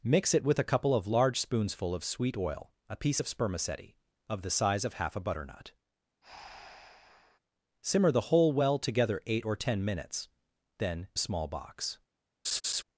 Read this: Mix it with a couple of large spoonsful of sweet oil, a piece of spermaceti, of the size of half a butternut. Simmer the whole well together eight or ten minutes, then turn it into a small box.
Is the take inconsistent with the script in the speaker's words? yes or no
yes